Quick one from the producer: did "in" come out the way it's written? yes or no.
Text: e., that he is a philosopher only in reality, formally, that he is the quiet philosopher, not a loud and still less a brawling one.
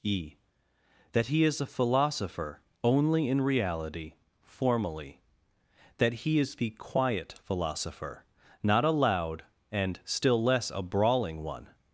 yes